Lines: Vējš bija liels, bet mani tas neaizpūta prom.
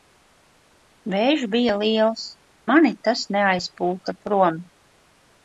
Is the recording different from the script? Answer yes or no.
yes